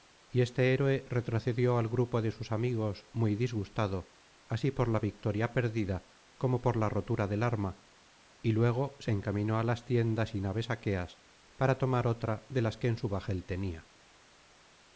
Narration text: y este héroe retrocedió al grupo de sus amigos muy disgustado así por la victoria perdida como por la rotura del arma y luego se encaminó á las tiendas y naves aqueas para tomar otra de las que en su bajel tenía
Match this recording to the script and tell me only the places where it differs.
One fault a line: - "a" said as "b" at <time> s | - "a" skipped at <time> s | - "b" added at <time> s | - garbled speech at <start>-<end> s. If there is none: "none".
none